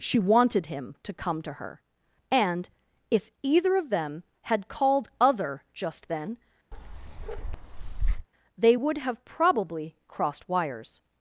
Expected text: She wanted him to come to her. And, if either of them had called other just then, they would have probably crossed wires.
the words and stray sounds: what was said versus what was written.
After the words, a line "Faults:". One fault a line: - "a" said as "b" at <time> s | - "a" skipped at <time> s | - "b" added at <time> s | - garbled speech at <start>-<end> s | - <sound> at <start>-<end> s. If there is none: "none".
She wanted him to come to her. And, if either of them had called other just then, they would have probably crossed wires.
Faults:
- bark at 6.7-8.3 s